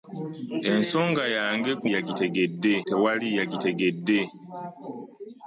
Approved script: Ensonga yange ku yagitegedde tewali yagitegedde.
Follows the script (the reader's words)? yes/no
yes